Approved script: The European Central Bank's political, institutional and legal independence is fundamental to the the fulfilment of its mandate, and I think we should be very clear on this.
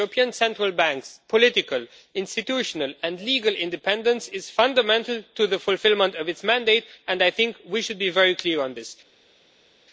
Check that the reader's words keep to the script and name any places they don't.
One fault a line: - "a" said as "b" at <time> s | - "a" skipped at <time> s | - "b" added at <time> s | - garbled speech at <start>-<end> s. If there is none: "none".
- "the" skipped at 5.6 s